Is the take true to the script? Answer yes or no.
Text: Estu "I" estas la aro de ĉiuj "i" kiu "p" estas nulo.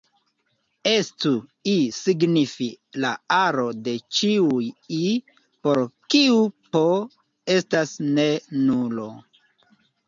no